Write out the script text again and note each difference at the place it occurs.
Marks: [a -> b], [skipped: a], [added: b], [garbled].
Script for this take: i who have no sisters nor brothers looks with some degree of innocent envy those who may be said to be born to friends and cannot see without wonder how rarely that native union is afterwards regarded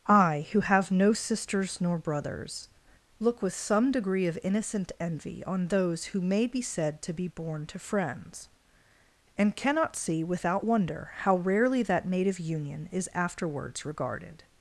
i who have no sisters nor brothers [looks -> look] with some degree of innocent envy [added: on] those who may be said to be born to friends and cannot see without wonder how rarely that native union is afterwards regarded